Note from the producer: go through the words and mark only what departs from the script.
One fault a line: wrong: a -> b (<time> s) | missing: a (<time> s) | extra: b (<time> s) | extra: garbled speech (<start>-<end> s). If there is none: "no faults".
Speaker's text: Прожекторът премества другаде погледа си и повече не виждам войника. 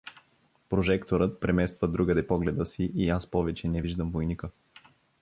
extra: аз (3.1 s)